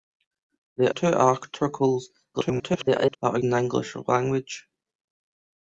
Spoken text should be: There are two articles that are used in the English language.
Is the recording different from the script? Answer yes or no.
yes